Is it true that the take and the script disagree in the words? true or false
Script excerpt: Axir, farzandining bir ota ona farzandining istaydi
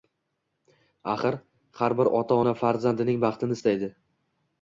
true